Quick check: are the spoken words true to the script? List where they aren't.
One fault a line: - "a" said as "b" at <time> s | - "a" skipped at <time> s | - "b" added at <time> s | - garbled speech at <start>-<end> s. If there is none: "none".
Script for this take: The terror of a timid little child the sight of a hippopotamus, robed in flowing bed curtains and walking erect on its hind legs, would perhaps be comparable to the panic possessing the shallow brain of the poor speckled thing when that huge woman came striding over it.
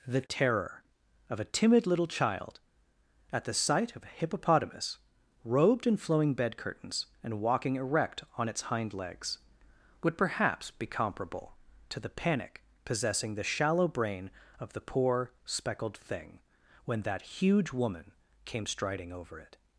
- "at" added at 3.3 s